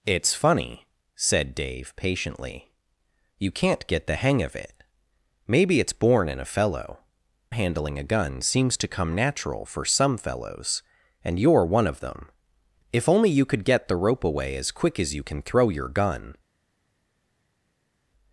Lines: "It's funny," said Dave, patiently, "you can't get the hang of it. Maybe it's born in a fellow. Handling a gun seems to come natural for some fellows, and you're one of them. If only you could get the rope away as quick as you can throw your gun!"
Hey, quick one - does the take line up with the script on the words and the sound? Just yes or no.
yes